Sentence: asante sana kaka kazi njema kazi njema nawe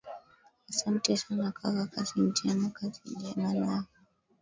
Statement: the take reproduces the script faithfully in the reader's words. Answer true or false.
true